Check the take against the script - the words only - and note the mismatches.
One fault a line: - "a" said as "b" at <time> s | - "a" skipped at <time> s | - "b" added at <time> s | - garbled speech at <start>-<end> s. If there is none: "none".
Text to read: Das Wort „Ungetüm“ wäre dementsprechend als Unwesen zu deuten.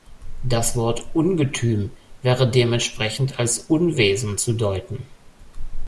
none